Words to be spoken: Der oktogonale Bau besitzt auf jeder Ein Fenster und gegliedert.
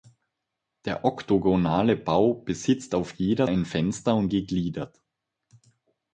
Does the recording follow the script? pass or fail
pass